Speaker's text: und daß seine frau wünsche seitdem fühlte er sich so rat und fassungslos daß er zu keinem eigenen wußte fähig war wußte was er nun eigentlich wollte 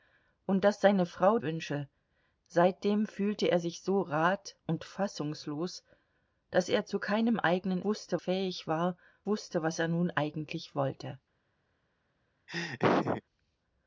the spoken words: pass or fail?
pass